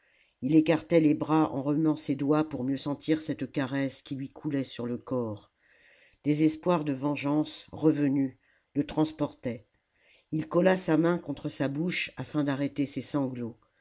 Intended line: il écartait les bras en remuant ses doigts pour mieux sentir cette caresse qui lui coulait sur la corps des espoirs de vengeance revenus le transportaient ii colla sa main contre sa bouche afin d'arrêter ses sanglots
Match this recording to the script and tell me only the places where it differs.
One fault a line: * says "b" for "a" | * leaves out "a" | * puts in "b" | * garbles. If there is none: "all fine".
* says "le" for "la"